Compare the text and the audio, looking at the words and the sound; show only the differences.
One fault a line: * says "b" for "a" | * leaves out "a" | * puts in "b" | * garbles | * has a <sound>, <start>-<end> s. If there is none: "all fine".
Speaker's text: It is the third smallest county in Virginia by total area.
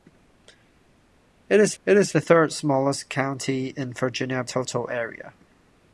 * puts in "it is"
* leaves out "by"